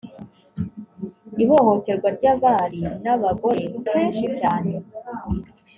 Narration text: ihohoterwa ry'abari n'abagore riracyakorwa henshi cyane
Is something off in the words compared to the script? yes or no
yes